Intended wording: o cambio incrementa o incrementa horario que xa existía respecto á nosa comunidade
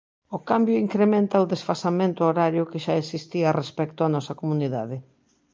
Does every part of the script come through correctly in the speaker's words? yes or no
no